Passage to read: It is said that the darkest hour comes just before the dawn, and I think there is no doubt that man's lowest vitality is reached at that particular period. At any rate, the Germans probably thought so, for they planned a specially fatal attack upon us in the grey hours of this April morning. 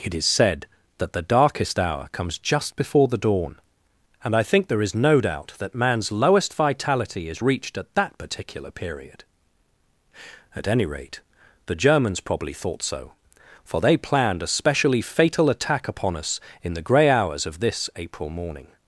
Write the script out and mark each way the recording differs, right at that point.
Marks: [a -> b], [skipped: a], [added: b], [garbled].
It is said that the darkest hour comes just before the dawn, and I think there is no doubt that man's lowest vitality is reached at that particular period. At any rate, the Germans probably thought so, for they planned a specially fatal attack upon us in the grey hours of this April morning.